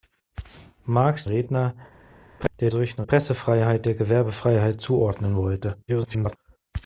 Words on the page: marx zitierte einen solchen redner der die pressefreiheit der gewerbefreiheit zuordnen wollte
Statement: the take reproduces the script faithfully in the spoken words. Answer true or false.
false